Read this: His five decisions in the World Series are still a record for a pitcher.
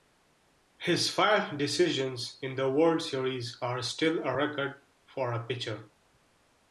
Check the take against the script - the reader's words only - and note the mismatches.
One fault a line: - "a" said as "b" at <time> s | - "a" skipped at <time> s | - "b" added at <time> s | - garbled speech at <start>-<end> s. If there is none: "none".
none